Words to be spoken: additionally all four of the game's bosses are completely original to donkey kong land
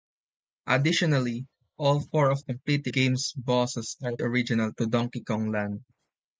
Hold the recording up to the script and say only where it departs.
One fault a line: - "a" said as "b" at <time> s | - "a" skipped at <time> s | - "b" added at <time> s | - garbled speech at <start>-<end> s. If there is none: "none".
- "the" said as "completely" at 2.4 s
- "completely" skipped at 4.2 s